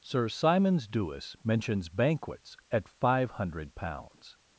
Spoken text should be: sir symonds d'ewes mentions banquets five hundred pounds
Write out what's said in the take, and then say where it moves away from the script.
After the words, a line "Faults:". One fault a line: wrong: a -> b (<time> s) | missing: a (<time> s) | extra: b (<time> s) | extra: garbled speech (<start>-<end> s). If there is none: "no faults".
sir symonds d'ewes mentions banquets at five hundred pounds
Faults:
extra: at (2.7 s)